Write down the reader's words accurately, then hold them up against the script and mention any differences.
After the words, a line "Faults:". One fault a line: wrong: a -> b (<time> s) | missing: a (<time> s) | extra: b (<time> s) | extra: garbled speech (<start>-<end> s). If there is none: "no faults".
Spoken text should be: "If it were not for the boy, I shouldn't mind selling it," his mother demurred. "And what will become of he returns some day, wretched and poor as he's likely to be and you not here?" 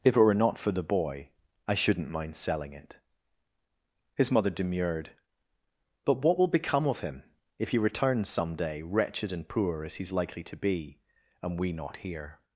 "If it were not for the boy, I shouldn't mind selling it," his mother demurred. "But what will become of him, if he returns some day, wretched and poor as he's likely to be and we not here?"
Faults:
wrong: And -> But (6.0 s)
extra: him if (7.0 s)
wrong: you -> we (11.6 s)